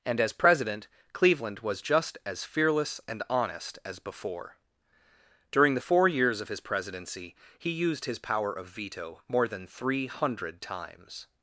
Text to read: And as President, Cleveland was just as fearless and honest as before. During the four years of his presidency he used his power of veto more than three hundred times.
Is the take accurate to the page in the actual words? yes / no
yes